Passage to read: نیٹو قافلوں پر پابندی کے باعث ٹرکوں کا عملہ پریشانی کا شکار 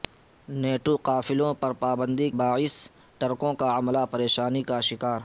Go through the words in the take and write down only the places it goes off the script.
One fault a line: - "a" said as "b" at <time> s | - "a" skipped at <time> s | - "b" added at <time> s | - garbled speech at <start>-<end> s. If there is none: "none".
- "کے" skipped at 2.3 s